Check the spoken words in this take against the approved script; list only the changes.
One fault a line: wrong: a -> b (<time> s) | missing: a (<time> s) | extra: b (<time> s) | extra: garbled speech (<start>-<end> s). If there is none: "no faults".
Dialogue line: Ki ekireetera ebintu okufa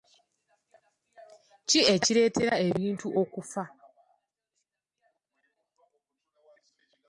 no faults